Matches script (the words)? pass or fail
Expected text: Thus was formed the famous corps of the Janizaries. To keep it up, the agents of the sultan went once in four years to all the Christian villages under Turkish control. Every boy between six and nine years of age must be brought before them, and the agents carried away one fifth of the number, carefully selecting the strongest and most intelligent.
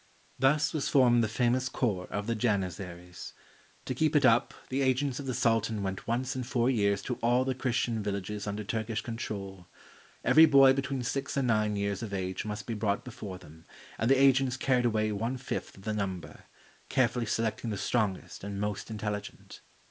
pass